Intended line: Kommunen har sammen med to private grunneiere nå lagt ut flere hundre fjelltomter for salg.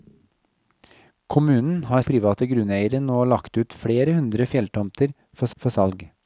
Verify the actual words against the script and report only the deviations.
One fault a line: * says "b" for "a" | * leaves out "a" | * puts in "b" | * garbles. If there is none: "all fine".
* leaves out "sammen med to"
* puts in "for"